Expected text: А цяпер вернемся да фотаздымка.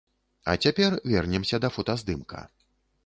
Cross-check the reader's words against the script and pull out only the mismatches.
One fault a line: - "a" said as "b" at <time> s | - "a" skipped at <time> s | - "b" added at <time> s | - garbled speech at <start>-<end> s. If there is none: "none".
none